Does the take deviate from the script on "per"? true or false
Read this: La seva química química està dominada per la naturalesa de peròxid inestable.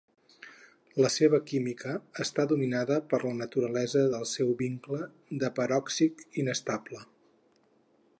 false